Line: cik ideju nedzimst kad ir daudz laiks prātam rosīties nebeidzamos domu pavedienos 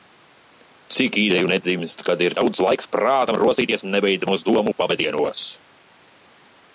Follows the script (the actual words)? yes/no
yes